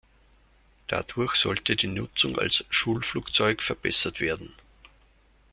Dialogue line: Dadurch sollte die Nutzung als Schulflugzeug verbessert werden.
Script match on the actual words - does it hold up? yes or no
yes